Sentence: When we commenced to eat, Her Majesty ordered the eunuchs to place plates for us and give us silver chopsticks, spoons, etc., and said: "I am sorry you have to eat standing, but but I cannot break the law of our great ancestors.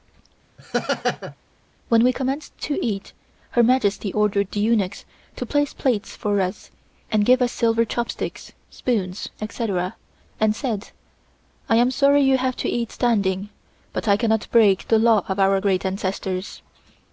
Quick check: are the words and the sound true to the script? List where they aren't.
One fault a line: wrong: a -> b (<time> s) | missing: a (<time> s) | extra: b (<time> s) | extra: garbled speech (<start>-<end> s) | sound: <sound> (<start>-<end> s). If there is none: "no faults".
sound: laugh (0.6-1.4 s)
missing: but (14.1 s)